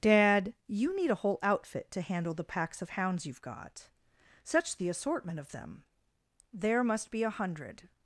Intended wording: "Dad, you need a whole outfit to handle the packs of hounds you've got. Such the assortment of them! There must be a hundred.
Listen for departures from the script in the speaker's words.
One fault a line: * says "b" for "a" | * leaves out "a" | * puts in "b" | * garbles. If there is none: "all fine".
all fine